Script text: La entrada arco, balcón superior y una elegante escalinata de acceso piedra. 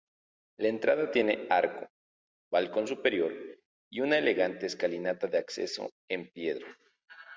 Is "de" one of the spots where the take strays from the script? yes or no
no